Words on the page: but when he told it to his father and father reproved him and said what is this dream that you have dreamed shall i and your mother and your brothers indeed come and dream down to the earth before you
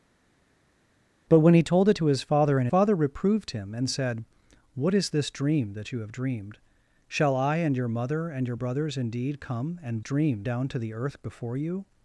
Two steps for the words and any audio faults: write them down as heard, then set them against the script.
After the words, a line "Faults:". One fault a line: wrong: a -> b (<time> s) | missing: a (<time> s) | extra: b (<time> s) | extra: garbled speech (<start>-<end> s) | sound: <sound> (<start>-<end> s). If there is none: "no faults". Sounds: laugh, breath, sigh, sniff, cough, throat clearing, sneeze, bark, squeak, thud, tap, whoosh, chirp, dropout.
but when he told it to his father and father reproved him and said what is this dream that you have dreamed shall i and your mother and your brothers indeed come and dream down to the earth before you
Faults:
no faults